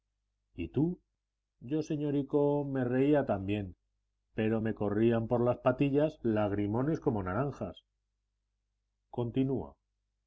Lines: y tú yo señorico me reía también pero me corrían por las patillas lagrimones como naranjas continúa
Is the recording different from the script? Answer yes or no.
no